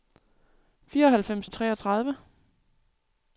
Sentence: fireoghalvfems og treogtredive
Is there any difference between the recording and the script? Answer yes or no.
no